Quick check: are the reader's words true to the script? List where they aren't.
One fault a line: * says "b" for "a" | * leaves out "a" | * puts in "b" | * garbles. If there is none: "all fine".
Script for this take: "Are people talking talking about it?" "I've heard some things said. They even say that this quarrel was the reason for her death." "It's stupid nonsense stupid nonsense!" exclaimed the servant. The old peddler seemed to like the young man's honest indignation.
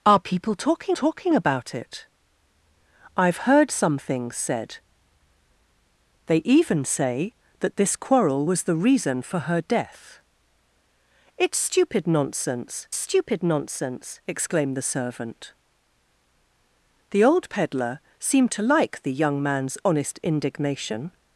all fine